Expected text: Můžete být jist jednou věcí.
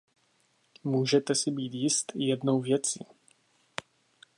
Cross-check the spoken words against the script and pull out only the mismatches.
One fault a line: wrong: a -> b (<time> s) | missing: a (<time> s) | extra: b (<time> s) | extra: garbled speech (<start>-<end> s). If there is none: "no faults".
extra: si (1.4 s)